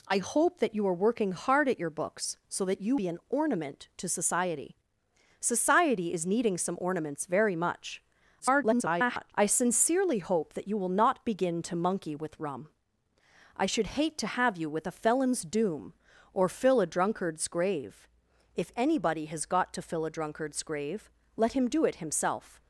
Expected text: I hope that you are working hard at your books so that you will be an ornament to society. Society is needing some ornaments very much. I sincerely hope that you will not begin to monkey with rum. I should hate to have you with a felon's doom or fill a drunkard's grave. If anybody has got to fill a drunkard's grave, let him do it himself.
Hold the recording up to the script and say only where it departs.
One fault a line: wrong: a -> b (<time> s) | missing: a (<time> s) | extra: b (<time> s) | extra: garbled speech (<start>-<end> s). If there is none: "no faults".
missing: will (3.0 s)
extra: garbled speech (8.4-9.3 s)